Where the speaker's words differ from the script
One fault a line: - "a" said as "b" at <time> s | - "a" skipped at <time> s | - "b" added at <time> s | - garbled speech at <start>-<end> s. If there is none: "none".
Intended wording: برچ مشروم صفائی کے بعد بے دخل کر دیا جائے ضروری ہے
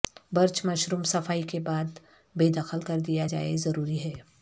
none